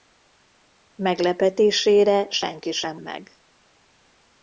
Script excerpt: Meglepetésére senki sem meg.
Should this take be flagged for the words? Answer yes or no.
no